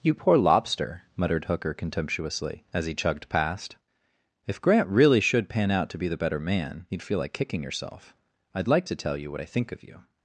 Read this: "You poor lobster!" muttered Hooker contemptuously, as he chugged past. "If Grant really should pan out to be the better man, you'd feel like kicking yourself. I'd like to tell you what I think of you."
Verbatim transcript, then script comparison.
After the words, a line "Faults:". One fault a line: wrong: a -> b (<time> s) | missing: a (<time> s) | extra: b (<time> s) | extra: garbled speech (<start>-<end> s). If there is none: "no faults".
"You poor lobster!" muttered Hooker contemptuously, as he chugged past. "If Grant really should pan out to be the better man, you'd feel like kicking yourself. I'd like to tell you what I think of you."
Faults:
no faults